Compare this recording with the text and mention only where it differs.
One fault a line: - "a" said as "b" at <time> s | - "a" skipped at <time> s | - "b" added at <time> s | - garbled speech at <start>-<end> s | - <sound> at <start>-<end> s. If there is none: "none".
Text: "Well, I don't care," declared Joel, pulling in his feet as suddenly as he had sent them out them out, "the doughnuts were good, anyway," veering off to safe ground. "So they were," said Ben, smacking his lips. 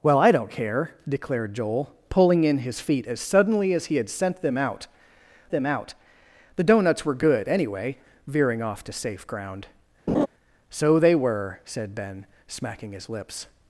- laugh at 10.1-10.3 s